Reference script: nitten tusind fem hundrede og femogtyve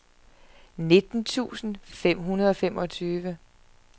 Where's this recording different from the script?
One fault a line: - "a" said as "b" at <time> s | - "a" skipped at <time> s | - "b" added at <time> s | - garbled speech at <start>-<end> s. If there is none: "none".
none